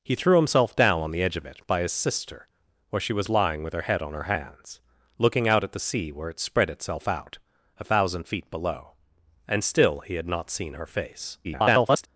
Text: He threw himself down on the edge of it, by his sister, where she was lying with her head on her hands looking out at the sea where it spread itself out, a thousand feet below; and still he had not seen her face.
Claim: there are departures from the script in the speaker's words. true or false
true